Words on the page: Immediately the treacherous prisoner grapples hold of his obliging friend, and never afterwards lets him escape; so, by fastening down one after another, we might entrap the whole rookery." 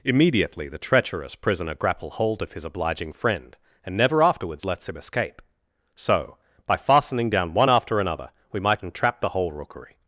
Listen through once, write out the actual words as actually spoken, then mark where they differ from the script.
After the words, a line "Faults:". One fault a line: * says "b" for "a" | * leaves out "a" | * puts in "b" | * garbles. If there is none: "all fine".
Immediately the treacherous prisoner grapple hold of his obliging friend, and never afterwards lets him escape; so, by fastening down one after another, we might entrap the whole rookery."
Faults:
* says "grapple" for "grapples"